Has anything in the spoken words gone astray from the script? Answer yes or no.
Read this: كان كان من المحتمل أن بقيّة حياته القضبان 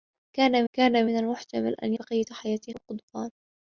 no